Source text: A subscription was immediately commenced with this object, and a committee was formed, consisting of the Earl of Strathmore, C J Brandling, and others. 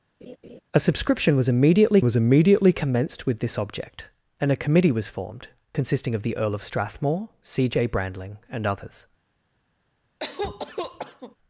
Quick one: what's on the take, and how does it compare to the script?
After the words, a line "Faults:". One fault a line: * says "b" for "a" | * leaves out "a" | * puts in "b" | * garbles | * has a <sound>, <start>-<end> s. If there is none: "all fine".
A subscription was immediately was immediately commenced with this object, and a committee was formed, consisting of the Earl of Strathmore, C J Brandling, and others.
Faults:
* has a laugh, 0.2-0.6 s
* puts in "was immediately"
* has a cough, 10.2-11.4 s